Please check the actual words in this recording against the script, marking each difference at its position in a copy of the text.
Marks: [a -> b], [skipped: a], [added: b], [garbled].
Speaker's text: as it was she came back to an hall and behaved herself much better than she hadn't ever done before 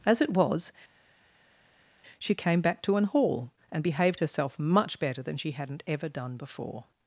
as it was she came back to an hall and behaved herself much better than she hadn't ever done before